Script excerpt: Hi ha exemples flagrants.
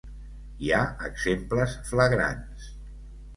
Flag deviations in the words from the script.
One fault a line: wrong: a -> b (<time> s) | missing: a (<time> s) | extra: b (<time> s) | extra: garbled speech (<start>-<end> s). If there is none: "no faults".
no faults